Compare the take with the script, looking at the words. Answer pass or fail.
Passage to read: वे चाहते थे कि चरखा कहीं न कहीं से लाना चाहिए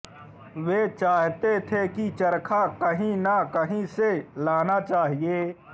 pass